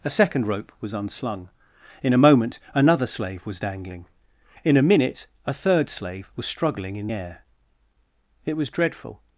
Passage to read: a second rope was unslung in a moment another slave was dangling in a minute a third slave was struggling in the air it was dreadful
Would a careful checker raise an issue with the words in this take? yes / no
yes